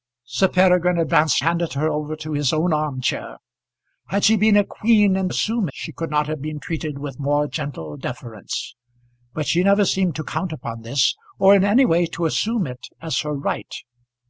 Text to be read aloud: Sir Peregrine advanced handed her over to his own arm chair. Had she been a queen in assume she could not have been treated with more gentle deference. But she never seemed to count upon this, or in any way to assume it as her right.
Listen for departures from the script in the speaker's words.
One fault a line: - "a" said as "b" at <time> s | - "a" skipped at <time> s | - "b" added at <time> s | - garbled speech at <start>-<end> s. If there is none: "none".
none